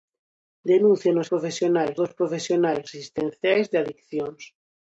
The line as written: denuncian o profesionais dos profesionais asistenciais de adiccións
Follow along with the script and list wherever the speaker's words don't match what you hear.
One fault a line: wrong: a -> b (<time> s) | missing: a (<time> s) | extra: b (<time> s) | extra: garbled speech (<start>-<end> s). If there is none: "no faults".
no faults